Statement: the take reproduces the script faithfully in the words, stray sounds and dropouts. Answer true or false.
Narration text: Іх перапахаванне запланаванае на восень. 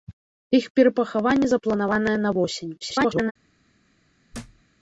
false